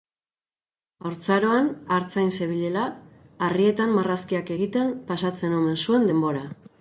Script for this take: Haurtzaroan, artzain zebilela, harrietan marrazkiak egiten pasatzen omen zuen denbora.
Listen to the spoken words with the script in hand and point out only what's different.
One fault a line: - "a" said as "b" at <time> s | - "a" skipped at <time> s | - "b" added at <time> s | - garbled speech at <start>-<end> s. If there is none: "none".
none